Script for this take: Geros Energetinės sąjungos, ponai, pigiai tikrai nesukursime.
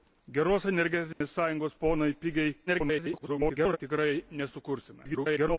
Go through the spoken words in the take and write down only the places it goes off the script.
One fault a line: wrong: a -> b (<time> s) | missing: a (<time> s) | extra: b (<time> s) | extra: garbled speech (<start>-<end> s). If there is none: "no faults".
extra: garbled speech (2.7-3.8 s)
extra: garbled speech (5.0-5.6 s)